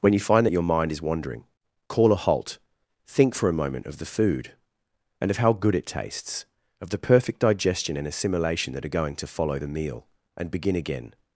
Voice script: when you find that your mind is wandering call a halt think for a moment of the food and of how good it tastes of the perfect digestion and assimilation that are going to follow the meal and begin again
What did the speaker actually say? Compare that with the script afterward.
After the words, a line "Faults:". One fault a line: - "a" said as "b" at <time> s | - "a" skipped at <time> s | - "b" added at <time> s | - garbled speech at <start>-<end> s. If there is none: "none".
when you find that your mind is wandering call a halt think for a moment of the food and of how good it tastes of the perfect digestion and assimilation that are going to follow the meal and begin again
Faults:
none